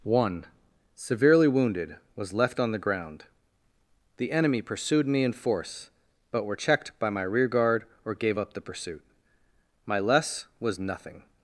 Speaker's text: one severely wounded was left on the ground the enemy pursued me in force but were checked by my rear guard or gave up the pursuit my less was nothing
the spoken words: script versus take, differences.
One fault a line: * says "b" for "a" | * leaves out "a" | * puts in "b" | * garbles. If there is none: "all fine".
all fine